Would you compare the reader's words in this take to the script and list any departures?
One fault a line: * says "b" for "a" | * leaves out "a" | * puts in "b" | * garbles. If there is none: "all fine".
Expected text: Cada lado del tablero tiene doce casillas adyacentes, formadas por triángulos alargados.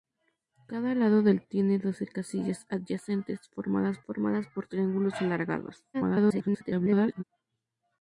* leaves out "tablero"
* puts in "formadas"
* garbles